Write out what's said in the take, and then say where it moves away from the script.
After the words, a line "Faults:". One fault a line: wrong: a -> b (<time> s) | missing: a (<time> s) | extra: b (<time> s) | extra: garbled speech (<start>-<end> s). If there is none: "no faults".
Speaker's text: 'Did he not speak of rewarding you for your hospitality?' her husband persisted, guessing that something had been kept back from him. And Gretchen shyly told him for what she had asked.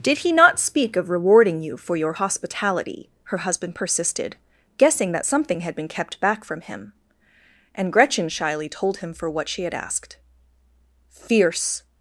'Did he not speak of rewarding you for your hospitality?' her husband persisted, guessing that something had been kept back from him. And Gretchen shyly told him for what she had asked. Fierce
Faults:
extra: Fierce (11.1 s)